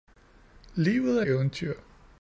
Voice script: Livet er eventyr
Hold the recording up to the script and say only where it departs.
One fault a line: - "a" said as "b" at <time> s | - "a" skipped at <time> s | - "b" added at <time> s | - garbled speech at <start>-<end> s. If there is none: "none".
none